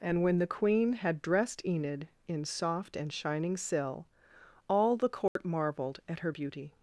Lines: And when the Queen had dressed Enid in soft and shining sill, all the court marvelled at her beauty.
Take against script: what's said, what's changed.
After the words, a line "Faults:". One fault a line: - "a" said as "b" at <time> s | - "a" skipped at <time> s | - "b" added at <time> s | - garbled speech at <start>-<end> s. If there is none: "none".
And when the Queen had dressed Enid in soft and shining sill, all the court marvelled at her beauty.
Faults:
none